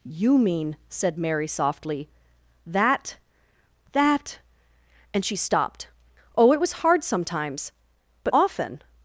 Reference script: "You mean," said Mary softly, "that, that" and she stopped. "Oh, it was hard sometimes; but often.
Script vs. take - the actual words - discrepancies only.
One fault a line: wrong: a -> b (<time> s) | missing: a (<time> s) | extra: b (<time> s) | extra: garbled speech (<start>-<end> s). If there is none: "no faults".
no faults